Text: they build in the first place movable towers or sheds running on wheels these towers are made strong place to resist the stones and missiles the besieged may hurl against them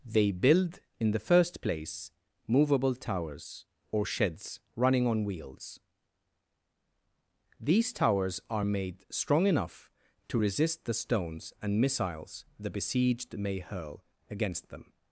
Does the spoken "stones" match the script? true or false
true